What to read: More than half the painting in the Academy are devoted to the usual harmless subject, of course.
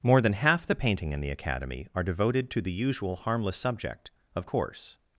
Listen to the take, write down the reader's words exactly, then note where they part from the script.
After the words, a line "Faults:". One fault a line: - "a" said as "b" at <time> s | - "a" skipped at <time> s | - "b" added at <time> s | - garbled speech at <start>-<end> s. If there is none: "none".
More than half the painting in the Academy are devoted to the usual harmless subject, of course.
Faults:
none